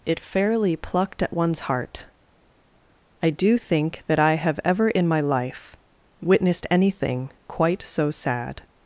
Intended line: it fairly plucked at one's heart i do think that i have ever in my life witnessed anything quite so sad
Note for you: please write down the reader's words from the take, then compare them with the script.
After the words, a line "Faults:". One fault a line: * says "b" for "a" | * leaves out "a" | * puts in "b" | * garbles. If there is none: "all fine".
it fairly plucked at one's heart i do think that i have ever in my life witnessed anything quite so sad
Faults:
all fine